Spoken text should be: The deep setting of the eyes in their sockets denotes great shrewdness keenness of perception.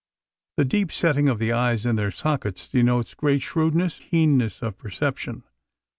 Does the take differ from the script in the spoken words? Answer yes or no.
no